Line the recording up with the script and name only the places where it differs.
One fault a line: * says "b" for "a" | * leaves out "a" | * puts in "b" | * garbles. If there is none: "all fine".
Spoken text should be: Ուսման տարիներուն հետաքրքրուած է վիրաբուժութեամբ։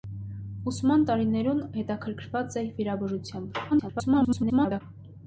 * garbles